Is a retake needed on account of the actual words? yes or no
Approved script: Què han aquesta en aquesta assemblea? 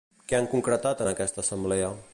yes